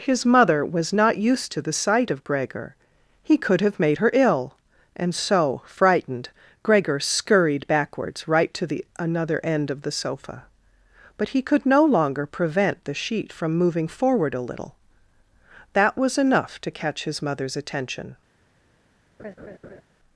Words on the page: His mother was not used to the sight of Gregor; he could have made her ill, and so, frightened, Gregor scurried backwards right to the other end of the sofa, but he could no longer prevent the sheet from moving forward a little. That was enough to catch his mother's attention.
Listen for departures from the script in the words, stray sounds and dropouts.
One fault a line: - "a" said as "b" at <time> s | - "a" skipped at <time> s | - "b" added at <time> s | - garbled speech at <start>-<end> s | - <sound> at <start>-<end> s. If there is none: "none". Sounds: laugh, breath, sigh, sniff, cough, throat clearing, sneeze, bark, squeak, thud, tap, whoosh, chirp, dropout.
- "other" said as "another" at 9.0 s
- laugh at 19.2-19.8 s